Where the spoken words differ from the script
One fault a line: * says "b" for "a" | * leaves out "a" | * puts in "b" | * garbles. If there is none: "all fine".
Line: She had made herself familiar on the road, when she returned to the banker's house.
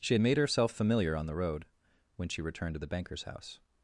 all fine